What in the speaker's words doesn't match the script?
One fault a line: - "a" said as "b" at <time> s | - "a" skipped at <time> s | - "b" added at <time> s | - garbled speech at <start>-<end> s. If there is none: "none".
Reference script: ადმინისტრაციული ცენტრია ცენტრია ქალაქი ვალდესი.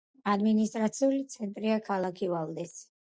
- "ცენტრია" skipped at 1.8 s